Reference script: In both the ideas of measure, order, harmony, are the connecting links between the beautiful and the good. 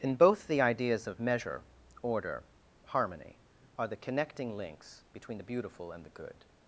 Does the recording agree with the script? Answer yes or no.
yes